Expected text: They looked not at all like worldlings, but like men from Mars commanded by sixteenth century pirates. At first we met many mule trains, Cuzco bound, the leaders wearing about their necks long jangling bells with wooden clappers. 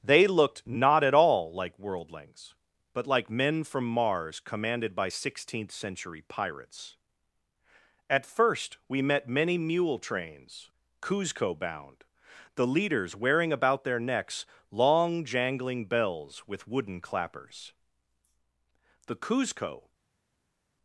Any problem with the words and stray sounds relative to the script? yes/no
yes